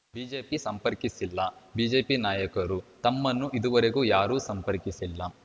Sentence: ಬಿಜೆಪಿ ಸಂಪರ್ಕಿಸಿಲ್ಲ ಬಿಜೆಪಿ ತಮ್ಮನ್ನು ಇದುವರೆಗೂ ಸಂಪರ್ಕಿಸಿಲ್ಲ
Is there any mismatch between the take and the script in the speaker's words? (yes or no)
yes